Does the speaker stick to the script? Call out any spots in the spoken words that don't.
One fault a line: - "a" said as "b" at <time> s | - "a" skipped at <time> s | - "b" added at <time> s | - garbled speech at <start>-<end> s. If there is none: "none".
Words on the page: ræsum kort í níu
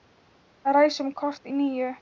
none